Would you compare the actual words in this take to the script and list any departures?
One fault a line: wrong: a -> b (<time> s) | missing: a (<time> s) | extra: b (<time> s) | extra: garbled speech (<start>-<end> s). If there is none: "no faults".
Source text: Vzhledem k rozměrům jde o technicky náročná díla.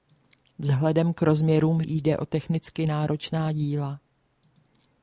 no faults